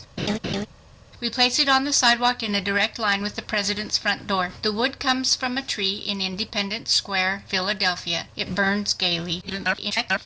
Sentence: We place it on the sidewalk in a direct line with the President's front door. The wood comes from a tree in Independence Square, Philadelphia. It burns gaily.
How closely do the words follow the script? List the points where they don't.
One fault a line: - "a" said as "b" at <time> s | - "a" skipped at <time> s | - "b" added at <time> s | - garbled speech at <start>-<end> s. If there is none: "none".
- garbled speech at 9.4-10.3 s